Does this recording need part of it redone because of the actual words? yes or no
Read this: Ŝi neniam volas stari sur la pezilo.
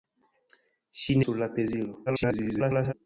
yes